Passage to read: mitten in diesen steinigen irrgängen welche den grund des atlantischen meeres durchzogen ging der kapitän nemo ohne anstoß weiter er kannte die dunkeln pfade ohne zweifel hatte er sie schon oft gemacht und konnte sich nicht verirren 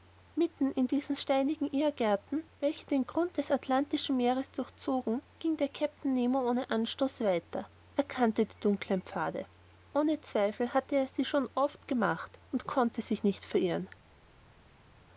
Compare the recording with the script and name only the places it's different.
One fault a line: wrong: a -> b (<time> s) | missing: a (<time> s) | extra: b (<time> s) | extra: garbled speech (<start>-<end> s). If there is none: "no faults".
no faults